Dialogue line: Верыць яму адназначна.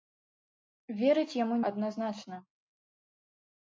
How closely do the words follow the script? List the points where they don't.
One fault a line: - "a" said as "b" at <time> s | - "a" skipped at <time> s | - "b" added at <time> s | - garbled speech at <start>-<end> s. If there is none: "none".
none